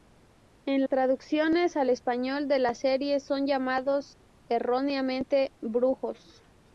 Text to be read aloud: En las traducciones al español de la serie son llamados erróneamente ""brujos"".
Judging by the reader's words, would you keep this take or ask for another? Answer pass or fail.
fail